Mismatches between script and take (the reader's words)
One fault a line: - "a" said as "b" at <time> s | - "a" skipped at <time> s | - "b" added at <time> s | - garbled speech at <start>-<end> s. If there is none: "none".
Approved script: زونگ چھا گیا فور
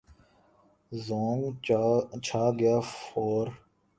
none